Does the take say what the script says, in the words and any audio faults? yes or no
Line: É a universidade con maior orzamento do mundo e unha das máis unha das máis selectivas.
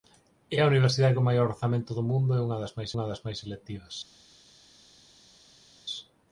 yes